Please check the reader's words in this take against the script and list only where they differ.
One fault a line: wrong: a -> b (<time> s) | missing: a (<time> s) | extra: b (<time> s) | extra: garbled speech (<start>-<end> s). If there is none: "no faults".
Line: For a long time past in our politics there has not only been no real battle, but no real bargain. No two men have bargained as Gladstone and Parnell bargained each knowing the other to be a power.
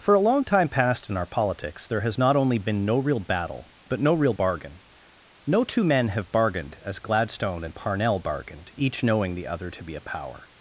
no faults